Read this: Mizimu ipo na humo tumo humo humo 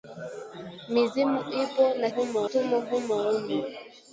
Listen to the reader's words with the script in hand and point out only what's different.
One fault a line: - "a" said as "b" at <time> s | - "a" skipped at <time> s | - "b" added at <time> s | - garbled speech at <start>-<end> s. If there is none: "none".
none